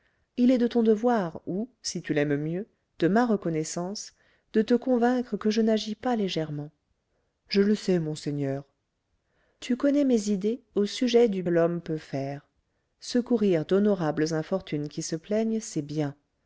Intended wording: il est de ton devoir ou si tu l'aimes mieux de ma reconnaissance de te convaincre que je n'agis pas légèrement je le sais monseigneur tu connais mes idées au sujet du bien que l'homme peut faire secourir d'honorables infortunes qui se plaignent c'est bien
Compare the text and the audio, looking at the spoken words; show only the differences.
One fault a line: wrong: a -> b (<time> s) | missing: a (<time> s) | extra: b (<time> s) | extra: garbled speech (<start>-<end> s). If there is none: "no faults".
missing: bien que (11.4 s)